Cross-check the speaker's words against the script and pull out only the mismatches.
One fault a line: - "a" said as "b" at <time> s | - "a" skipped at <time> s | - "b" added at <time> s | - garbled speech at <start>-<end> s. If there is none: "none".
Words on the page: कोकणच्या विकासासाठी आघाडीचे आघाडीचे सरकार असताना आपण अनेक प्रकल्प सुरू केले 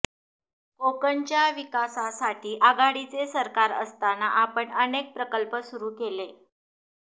- "आघाडीचे" skipped at 3.3 s